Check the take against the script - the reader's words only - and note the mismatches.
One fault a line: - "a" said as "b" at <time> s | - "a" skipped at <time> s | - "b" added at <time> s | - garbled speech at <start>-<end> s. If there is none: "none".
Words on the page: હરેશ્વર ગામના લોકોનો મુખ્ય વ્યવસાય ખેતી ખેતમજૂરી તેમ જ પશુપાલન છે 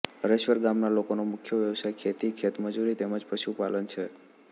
none